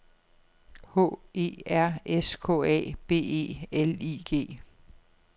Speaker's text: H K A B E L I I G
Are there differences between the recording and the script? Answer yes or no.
yes